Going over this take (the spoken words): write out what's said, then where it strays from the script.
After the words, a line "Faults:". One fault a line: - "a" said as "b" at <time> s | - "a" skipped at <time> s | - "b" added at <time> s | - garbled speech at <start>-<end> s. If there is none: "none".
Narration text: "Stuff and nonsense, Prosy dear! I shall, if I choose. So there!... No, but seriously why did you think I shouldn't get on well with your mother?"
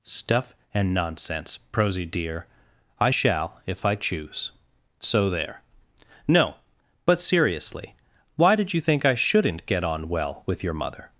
"Stuff and nonsense, Prosy dear! I shall, if I choose. So there!... No, but seriously why did you think I shouldn't get on well with your mother?"
Faults:
none